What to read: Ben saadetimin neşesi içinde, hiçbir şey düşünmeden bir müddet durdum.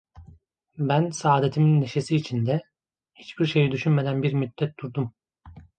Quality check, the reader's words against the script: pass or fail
pass